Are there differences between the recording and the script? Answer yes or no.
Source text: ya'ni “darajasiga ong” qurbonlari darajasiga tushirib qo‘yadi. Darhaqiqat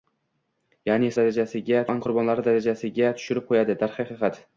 no